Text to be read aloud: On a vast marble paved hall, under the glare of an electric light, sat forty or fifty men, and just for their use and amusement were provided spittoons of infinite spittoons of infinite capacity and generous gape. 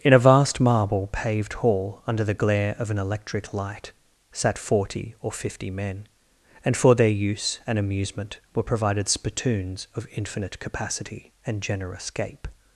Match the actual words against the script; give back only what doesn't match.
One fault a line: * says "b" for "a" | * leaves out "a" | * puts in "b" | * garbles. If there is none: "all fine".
* says "In" for "On"
* leaves out "just"
* leaves out "spittoons of infinite"